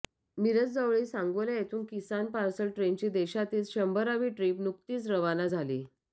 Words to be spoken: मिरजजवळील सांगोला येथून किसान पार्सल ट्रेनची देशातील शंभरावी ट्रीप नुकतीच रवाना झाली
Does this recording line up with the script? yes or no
yes